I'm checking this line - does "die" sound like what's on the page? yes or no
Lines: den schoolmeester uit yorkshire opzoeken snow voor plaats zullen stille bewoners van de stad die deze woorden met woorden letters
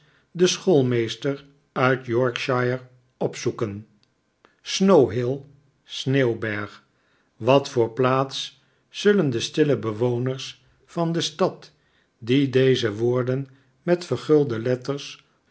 yes